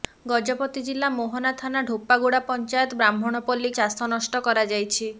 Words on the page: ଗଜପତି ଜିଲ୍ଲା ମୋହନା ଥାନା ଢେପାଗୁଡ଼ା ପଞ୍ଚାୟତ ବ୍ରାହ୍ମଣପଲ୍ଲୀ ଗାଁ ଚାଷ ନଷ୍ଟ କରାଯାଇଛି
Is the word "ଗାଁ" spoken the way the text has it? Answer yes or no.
no